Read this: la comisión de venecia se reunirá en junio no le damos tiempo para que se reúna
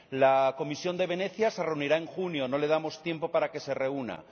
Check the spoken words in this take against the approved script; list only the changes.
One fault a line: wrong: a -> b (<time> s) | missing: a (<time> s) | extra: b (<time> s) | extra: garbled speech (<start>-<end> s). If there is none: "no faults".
no faults